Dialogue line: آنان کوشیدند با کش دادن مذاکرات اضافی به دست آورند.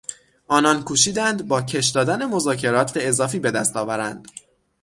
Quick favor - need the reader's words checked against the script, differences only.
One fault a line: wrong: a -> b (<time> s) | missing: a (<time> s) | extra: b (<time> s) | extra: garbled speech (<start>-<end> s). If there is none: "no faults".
no faults